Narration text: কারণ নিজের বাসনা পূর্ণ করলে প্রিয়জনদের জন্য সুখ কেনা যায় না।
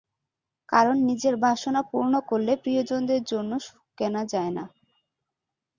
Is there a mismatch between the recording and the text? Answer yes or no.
no